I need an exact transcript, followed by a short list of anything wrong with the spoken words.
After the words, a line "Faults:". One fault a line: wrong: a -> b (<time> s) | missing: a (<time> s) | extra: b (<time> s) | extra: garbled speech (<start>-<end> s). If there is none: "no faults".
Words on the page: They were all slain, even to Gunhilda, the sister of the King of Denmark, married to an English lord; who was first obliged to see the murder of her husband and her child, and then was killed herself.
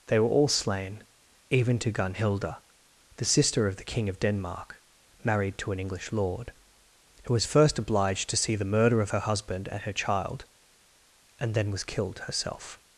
They were all slain, even to Gunhilda, the sister of the King of Denmark, married to an English lord; who was first obliged to see the murder of her husband and her child, and then was killed herself.
Faults:
no faults